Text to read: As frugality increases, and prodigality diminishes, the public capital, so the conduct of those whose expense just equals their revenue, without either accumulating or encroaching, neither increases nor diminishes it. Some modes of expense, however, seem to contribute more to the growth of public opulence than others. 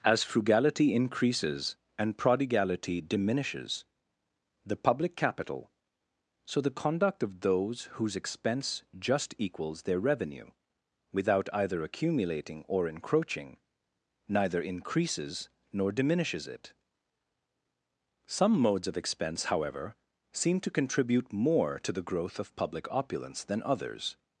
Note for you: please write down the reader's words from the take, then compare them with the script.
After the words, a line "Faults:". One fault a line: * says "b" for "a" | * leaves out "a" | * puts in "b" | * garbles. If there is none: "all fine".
As frugality increases, and prodigality diminishes, the public capital, so the conduct of those whose expense just equals their revenue, without either accumulating or encroaching, neither increases nor diminishes it. Some modes of expense, however, seem to contribute more to the growth of public opulence than others.
Faults:
all fine